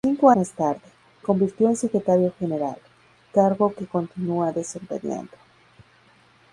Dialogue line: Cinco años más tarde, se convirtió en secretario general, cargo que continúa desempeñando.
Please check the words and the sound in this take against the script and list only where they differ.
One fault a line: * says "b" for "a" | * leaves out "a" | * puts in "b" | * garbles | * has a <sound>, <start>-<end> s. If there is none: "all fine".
* leaves out "años"
* leaves out "se"